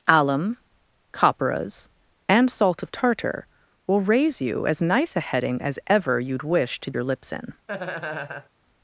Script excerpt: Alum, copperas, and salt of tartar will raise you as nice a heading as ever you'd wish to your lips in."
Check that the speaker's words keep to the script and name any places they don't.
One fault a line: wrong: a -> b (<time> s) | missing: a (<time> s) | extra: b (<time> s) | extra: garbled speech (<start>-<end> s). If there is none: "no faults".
no faults